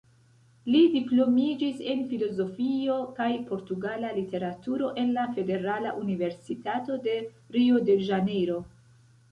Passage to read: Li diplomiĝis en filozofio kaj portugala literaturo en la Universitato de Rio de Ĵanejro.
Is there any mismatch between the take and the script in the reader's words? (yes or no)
yes